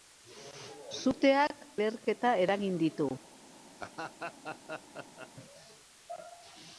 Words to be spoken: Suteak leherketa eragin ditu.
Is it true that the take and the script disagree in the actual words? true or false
false